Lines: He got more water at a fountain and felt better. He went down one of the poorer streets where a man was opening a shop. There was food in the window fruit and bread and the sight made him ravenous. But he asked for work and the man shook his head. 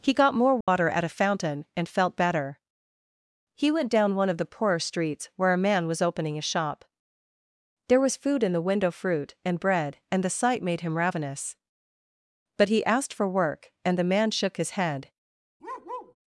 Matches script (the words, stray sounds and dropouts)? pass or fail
fail